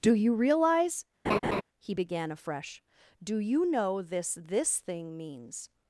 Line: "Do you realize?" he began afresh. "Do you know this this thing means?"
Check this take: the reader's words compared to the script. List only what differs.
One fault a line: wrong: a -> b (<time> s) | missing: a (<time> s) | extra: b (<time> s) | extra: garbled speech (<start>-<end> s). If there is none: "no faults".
no faults